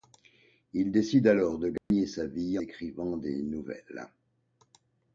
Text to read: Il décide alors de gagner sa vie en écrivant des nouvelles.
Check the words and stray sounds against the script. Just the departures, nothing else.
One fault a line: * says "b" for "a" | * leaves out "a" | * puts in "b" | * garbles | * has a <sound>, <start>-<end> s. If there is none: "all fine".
* has a dropout, 1.8-1.9 s
* leaves out "en"